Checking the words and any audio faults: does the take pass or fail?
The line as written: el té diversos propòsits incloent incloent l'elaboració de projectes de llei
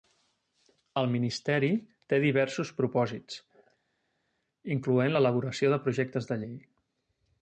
fail